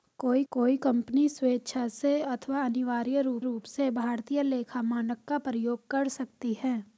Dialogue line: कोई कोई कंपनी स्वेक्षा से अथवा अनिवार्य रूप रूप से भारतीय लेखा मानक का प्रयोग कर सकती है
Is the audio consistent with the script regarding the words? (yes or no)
yes